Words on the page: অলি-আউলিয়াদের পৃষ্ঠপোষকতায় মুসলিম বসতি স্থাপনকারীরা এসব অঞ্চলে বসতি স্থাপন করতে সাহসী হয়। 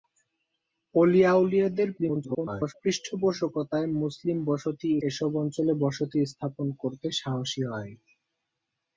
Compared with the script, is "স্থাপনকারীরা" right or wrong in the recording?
wrong